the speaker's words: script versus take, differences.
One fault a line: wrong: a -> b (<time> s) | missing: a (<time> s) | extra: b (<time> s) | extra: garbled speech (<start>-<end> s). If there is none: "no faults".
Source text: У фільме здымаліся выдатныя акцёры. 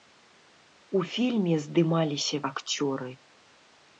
missing: выдатныя (2.4 s)